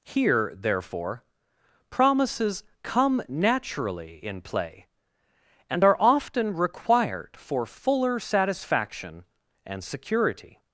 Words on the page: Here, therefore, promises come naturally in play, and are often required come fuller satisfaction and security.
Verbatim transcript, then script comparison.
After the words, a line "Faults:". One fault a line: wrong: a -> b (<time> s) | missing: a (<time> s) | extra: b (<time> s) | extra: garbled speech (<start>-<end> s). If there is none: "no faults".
Here, therefore, promises come naturally in play, and are often required for fuller satisfaction and security.
Faults:
wrong: come -> for (7.4 s)